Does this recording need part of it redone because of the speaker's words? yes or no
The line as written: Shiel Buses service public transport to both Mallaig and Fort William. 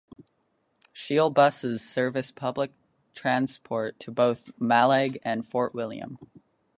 no